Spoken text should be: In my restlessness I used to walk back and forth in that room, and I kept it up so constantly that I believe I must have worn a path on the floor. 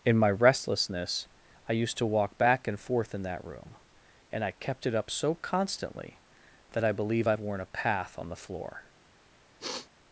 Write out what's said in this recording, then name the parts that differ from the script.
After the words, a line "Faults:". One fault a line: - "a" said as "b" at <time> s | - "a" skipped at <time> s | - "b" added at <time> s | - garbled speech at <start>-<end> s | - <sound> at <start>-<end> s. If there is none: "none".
In my restlessness I used to walk back and forth in that room, and I kept it up so constantly that I believe I worn a path on the floor.
Faults:
- "must have" skipped at 7.4 s
- sniff at 9.6-9.9 s